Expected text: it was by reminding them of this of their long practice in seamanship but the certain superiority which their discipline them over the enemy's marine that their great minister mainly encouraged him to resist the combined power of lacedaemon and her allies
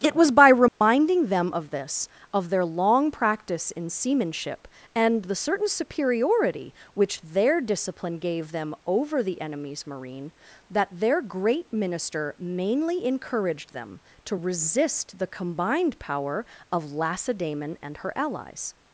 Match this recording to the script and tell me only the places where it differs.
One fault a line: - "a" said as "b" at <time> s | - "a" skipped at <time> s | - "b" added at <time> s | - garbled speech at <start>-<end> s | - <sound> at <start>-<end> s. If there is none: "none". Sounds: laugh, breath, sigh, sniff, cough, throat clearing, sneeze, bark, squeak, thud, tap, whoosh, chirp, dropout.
- dropout at 0.7-0.8 s
- "but" said as "and" at 5.0 s
- "gave" added at 8.2 s
- "him" said as "them" at 13.7 s